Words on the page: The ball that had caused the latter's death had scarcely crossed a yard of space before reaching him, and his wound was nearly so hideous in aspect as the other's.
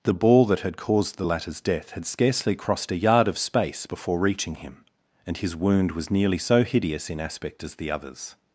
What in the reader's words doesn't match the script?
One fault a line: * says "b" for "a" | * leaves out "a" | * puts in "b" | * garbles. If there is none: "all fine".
all fine